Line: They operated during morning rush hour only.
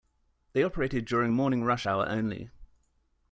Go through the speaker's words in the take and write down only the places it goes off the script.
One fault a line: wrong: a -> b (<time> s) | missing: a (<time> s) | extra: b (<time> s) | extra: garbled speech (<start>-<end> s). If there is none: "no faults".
no faults